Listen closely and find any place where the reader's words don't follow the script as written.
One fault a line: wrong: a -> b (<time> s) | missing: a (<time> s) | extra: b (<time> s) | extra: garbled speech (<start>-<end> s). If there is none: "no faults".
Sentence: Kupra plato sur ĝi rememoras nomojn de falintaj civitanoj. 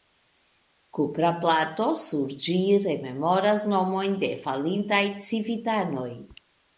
no faults